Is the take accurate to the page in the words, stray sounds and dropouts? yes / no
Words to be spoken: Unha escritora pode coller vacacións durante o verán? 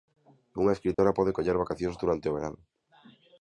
no